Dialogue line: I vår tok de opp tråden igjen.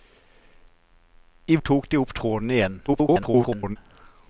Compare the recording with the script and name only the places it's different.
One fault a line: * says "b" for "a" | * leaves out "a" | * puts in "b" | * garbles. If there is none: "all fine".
* leaves out "vår"
* garbles